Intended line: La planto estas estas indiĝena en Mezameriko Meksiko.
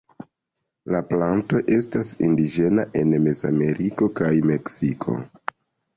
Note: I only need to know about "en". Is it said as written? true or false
true